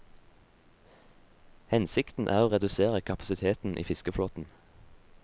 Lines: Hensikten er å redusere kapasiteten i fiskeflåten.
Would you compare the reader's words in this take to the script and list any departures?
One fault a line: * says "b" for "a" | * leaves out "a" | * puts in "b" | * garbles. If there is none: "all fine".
all fine